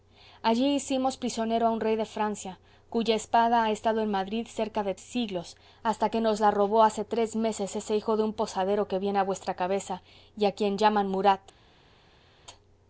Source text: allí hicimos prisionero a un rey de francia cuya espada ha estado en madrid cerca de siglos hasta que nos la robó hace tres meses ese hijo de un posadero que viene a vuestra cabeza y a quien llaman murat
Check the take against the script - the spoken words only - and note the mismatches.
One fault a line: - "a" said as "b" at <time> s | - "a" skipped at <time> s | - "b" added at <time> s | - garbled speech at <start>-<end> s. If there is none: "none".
none